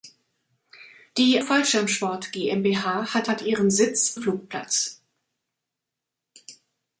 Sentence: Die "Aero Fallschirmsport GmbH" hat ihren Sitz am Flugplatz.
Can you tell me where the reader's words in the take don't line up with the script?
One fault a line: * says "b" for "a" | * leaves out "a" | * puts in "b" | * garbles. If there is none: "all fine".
* leaves out "Aero"
* puts in "hat"
* leaves out "am"